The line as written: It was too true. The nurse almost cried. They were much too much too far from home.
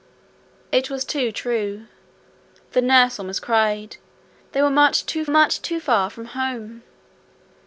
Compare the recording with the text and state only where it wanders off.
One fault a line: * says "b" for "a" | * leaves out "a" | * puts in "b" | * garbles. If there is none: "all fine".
all fine